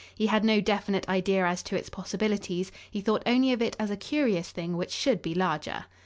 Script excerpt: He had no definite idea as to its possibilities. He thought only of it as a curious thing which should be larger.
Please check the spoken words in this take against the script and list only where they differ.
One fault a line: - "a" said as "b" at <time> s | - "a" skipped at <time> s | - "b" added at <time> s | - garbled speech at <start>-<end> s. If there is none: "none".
none